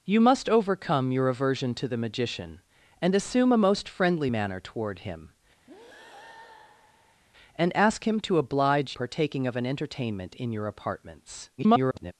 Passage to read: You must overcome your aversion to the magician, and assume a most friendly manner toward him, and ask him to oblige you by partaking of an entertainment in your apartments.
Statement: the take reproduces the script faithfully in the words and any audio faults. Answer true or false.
false